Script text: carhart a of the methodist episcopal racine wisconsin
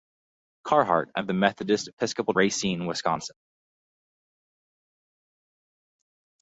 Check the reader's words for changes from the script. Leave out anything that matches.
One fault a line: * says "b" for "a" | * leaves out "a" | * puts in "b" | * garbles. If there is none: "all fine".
all fine